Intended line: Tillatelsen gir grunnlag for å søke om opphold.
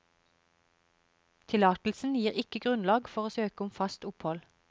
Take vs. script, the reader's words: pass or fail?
fail